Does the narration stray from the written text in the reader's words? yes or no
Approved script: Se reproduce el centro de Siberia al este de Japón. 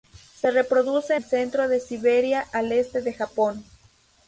no